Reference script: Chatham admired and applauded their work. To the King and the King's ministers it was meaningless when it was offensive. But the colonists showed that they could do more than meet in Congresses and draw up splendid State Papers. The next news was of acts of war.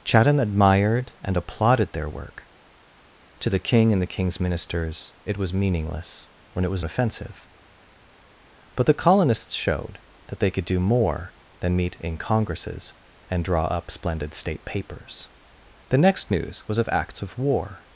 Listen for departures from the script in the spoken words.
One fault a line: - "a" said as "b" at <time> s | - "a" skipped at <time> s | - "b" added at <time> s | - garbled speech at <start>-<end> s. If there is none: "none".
none